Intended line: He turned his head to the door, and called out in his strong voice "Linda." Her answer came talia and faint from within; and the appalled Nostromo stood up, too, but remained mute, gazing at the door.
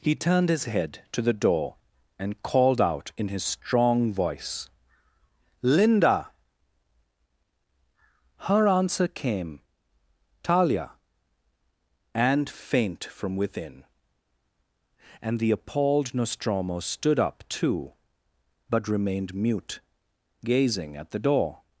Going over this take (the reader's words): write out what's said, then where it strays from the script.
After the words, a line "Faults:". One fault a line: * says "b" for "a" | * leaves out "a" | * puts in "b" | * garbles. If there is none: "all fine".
He turned his head to the door, and called out in his strong voice "Linda." Her answer came talia and faint from within; and the appalled Nostromo stood up, too, but remained mute, gazing at the door.
Faults:
all fine